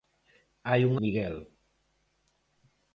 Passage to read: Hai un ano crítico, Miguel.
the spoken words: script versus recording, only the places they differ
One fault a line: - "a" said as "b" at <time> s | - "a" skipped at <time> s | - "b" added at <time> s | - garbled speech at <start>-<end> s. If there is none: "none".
- "ano crítico" skipped at 0.9 s